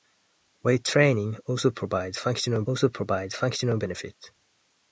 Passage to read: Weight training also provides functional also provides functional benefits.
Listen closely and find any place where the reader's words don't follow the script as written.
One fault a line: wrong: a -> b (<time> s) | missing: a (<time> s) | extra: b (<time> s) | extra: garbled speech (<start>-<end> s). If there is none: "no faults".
no faults